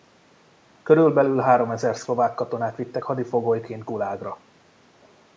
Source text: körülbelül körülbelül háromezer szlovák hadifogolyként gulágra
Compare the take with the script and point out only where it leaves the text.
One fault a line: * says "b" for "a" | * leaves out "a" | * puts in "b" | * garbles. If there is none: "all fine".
* leaves out "körülbelül"
* puts in "katonát vittek"